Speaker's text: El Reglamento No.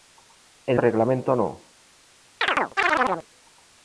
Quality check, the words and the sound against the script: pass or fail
fail